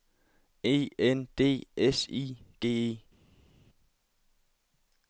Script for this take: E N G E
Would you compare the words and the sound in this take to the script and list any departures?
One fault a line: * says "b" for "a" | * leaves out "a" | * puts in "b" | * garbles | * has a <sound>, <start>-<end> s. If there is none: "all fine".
* puts in "D S I"